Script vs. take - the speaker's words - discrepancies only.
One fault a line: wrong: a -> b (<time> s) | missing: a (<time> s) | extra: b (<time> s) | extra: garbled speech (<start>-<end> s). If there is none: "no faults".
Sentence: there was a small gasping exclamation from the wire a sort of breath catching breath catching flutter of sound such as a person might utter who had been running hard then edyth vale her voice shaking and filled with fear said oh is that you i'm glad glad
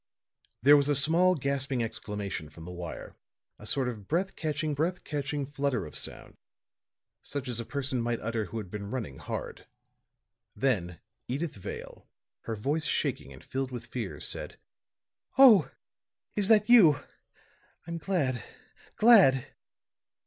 no faults